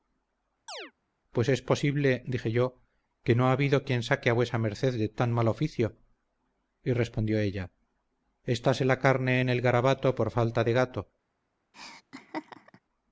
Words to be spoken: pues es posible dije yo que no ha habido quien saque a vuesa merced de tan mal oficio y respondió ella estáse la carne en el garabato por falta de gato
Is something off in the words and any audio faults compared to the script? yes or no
yes